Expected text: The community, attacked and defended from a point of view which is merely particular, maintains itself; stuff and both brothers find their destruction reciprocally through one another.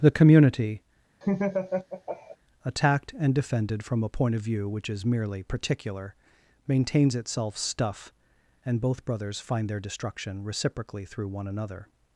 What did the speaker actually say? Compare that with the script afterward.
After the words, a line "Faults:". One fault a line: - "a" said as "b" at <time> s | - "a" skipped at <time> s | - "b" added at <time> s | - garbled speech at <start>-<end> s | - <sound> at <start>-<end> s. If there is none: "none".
The community, attacked and defended from a point of view which is merely particular, maintains itself; stuff and both brothers find their destruction reciprocally through one another.
Faults:
- laugh at 1.2-2.4 s